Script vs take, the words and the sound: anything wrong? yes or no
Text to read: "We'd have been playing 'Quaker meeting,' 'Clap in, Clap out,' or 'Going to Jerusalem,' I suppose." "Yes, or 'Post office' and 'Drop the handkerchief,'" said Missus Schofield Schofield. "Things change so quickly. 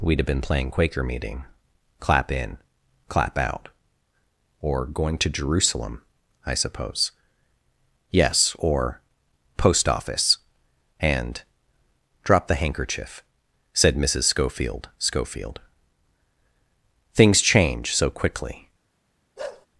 yes